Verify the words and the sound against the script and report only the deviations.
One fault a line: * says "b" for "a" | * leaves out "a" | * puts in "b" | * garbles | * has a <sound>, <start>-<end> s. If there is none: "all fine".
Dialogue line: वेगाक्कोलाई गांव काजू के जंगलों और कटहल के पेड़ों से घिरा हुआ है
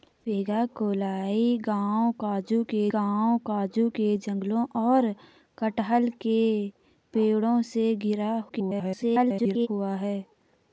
* puts in "गांव काजू के"
* garbles